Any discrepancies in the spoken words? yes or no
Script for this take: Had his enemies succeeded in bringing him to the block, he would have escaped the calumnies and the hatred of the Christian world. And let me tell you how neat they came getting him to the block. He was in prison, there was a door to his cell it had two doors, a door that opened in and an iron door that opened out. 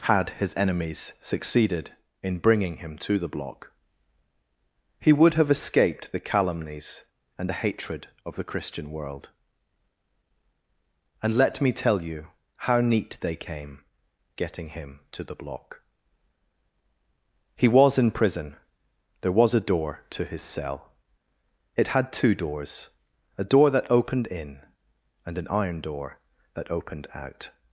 no